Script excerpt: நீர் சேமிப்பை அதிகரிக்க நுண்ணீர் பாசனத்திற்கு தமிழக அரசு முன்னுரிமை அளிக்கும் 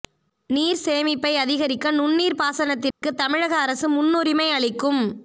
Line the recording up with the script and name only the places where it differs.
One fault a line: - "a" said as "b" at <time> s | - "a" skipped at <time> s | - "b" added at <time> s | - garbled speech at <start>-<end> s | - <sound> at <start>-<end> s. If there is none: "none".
- dropout at 2.9-3.0 s